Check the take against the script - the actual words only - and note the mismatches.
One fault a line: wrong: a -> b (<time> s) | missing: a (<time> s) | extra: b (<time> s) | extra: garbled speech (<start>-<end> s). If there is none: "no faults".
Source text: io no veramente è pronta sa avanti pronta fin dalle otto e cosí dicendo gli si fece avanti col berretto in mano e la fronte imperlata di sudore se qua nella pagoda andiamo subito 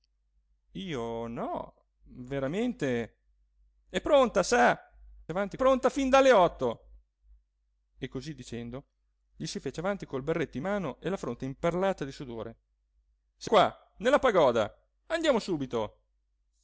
no faults